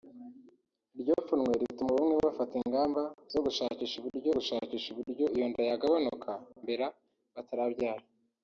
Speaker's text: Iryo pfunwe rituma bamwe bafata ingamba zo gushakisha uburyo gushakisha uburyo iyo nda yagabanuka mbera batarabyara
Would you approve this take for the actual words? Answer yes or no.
yes